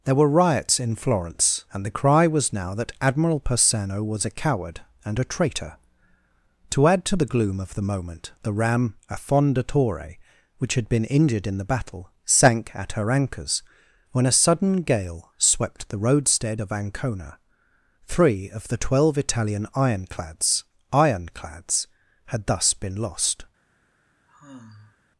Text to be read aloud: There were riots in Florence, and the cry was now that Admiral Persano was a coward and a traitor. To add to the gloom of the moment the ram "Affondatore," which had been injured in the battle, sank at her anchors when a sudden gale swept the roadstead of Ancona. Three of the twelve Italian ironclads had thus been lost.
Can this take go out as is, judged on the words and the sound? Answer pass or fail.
fail